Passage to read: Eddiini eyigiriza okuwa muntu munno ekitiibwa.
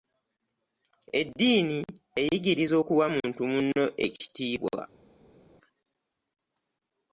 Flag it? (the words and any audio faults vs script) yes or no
no